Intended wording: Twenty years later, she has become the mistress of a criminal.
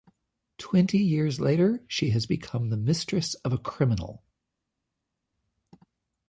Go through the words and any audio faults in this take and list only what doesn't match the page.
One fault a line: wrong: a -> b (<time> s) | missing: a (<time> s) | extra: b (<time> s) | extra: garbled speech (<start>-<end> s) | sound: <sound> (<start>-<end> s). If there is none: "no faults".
no faults